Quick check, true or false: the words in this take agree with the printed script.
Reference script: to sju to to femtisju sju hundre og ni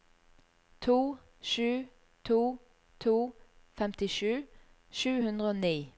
true